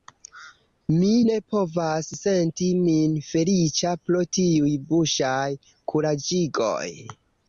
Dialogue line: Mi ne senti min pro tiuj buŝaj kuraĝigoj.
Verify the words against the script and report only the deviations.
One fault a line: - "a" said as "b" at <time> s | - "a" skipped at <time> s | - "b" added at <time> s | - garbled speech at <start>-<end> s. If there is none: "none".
- "povas" added at 1.5 s
- "feliĉa" added at 3.3 s